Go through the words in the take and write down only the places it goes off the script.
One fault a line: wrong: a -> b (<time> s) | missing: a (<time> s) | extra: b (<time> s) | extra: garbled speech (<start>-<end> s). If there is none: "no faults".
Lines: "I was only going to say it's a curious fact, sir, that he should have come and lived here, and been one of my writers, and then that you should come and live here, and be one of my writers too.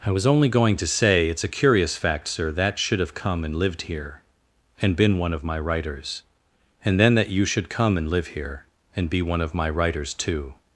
missing: he (2.8 s)